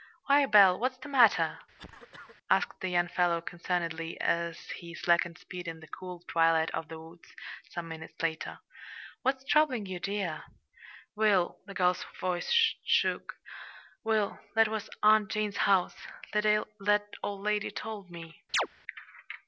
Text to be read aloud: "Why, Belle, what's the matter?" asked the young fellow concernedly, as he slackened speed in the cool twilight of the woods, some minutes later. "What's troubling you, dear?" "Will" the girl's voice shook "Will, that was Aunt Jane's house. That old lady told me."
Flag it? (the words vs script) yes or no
no